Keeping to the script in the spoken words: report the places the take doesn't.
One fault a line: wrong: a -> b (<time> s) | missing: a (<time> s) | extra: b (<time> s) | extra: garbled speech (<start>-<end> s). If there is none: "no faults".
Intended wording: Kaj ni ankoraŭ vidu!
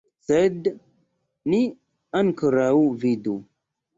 wrong: Kaj -> Sed (0.3 s)